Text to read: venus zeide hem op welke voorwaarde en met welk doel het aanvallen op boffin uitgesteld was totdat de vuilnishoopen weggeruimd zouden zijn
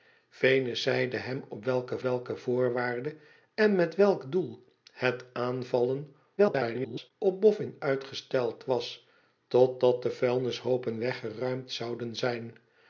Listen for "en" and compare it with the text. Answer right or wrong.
right